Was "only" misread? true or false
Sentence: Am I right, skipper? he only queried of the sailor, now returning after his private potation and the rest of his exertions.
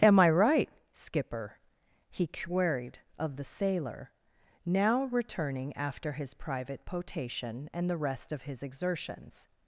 true